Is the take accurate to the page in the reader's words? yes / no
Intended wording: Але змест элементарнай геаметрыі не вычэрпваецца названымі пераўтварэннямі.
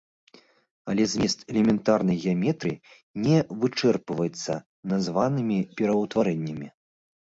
yes